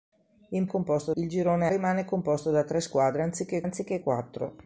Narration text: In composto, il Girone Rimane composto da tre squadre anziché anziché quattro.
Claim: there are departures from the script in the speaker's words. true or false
false